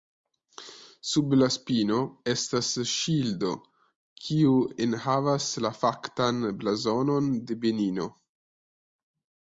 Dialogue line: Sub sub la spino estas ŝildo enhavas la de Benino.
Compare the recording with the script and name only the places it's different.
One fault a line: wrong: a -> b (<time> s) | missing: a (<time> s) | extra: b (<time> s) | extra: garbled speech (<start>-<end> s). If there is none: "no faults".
missing: sub (1.4 s)
extra: kiu (4.3 s)
extra: faktan blazonon (5.8 s)